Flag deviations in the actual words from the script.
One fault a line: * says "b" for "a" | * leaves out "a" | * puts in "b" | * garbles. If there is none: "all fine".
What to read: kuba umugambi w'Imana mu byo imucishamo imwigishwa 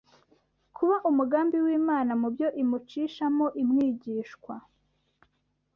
all fine